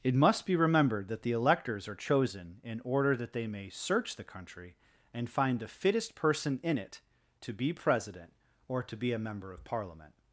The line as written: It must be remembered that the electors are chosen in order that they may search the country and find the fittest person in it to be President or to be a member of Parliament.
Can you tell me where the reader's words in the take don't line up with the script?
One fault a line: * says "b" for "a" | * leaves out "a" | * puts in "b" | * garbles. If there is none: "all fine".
all fine